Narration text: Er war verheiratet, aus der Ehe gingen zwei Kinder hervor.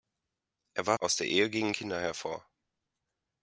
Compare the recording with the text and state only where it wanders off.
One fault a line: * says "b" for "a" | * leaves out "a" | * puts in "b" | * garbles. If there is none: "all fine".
* leaves out "verheiratet"
* leaves out "zwei"